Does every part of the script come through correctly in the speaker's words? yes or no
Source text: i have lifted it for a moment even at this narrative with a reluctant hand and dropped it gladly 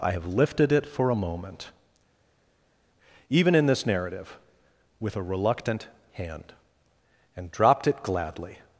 no